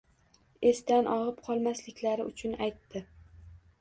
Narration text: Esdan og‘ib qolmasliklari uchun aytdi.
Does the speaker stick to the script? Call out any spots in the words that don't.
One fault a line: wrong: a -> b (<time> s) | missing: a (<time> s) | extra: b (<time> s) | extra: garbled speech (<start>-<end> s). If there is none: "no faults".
no faults